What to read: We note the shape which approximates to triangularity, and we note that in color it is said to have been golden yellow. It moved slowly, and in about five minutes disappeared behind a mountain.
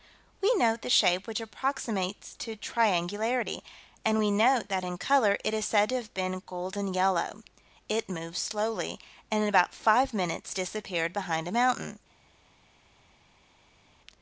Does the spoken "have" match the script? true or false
true